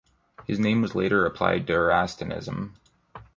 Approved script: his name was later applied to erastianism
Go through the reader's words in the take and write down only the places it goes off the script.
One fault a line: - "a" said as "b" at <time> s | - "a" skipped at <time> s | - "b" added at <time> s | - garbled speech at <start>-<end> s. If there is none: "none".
none